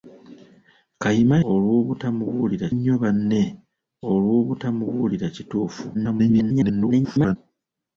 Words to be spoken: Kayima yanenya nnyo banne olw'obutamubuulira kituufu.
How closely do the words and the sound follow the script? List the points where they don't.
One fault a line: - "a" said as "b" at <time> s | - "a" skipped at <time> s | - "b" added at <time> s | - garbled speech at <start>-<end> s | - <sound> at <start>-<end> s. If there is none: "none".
- "yanenya" said as "olw'obutamubuulira" at 1.5 s
- garbled speech at 5.9-7.4 s